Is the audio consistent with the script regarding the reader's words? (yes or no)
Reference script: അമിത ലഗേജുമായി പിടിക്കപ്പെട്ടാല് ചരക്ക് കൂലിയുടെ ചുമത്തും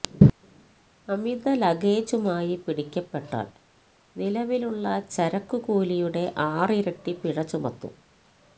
no